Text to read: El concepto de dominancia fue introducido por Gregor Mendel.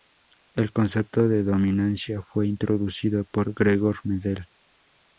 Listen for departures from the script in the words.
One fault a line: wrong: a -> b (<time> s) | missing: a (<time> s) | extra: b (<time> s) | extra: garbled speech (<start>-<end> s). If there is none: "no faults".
no faults